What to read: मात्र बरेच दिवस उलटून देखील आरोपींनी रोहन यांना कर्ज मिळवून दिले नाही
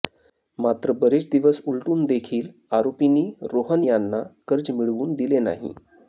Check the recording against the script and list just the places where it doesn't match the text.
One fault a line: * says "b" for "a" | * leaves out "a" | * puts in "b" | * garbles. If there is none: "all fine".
all fine